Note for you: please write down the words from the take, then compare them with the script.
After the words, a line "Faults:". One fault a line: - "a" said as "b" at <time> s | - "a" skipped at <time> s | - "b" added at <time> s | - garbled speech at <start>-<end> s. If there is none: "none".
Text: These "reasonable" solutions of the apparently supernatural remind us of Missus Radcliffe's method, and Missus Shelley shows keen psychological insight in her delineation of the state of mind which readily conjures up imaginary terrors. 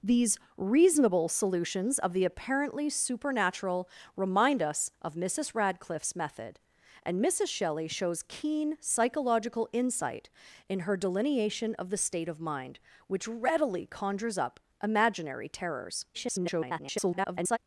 These "reasonable" solutions of the apparently supernatural remind us of Missus Radcliffe's method, and Missus Shelley shows keen psychological insight in her delineation of the state of mind which readily conjures up imaginary terrors. [garbled]
Faults:
- garbled speech at 16.1-17.6 s